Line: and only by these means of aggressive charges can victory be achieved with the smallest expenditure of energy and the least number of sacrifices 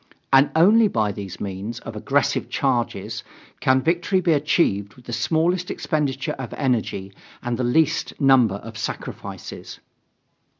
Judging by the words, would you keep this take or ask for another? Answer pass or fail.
pass